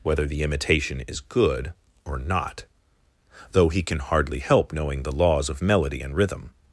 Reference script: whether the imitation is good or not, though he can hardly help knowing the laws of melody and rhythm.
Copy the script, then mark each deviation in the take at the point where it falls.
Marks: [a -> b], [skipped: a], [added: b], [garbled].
whether the imitation is good or not, though he can hardly help knowing the laws of melody and rhythm.